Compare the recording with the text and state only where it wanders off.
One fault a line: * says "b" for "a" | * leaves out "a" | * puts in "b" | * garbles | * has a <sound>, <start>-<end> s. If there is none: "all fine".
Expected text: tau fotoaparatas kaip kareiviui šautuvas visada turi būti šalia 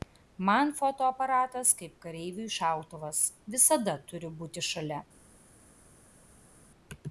* says "man" for "tau"